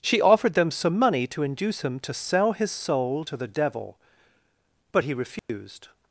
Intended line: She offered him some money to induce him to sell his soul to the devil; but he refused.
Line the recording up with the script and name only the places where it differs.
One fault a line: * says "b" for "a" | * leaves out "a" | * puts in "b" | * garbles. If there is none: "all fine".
* says "them" for "him"